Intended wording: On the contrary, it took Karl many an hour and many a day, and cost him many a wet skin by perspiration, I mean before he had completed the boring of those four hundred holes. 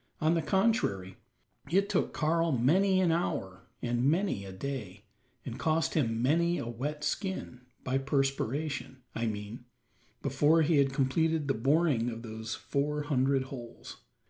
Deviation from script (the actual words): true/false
false